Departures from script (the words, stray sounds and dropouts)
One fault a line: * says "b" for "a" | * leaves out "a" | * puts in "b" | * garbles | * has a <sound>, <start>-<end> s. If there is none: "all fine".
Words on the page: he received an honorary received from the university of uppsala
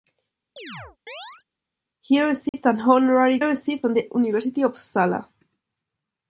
* has a chirp, 0.6-1.4 s
* has a dropout, 2.5-2.5 s